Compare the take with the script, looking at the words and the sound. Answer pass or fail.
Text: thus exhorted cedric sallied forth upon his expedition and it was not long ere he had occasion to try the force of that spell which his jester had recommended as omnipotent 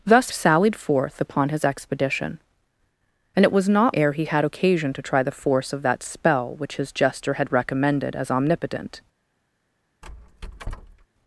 fail